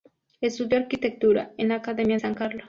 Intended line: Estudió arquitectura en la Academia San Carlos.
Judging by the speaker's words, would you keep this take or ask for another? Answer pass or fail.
pass